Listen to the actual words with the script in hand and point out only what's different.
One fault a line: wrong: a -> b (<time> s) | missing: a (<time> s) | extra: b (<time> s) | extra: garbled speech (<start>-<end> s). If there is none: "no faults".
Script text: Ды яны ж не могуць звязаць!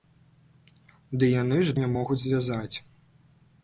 no faults